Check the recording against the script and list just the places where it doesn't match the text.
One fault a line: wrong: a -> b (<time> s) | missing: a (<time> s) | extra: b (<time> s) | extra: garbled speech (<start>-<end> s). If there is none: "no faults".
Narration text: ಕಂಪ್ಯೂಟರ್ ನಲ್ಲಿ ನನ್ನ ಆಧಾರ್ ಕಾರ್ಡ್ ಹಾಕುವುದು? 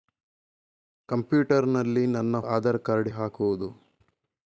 no faults